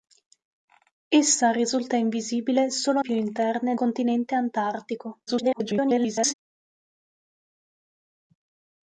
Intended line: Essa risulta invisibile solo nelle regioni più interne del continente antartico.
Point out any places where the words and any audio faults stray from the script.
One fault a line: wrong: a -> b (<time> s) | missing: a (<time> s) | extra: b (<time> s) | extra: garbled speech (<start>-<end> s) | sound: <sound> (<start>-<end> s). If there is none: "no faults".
missing: nelle regioni (3.0 s)
missing: del (3.7 s)
extra: garbled speech (5.3-6.3 s)